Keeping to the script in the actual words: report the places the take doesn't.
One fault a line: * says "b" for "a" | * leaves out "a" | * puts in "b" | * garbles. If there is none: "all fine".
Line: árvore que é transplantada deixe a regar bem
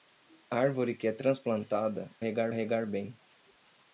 * says "regar" for "deixe"